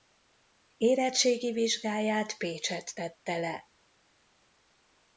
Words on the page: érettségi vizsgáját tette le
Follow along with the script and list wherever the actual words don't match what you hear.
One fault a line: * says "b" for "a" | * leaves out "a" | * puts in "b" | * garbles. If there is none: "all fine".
* puts in "pécsett"